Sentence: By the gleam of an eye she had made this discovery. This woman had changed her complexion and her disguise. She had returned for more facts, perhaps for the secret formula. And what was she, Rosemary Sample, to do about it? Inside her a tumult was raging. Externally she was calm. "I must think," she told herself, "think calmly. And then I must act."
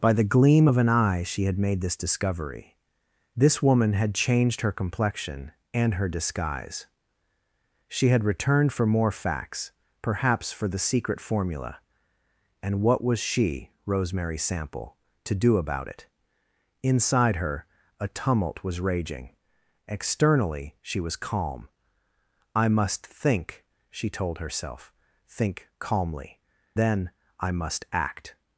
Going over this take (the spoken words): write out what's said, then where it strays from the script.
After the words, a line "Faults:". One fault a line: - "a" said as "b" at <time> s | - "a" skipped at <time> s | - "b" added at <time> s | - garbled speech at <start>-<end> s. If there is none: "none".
By the gleam of an eye she had made this discovery. This woman had changed her complexion and her disguise. She had returned for more facts, perhaps for the secret formula. And what was she, Rosemary Sample, to do about it? Inside her a tumult was raging. Externally she was calm. "I must think," she told herself, "think calmly. Then I must act."
Faults:
- "And" skipped at 26.4 s